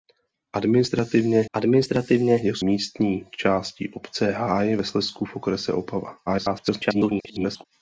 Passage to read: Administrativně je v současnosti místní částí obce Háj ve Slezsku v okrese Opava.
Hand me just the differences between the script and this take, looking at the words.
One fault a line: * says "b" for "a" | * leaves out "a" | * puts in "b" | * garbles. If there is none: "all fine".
* puts in "administrativně"
* leaves out "současnosti"
* garbles